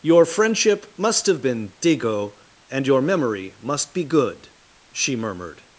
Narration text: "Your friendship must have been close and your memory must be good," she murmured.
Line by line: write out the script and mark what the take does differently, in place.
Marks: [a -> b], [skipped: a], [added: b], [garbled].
"Your friendship must have been [close -> digo] and your memory must be good," she murmured.